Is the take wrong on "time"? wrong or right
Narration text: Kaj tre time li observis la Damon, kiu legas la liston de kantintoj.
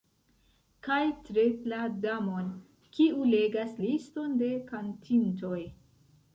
wrong